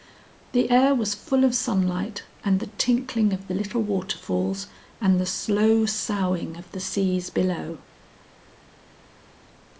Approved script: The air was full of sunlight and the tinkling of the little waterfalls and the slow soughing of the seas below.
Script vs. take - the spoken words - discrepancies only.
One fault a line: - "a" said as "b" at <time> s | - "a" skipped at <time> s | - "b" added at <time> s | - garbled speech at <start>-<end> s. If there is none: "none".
none